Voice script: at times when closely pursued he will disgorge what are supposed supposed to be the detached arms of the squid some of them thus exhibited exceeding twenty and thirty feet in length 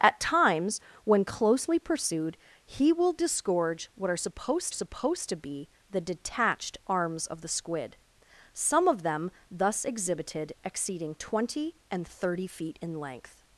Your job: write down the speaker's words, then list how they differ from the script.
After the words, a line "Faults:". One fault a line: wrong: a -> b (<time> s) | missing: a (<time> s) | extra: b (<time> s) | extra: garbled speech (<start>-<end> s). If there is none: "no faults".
at times when closely pursued he will disgorge what are supposed supposed to be the detached arms of the squid some of them thus exhibited exceeding twenty and thirty feet in length
Faults:
no faults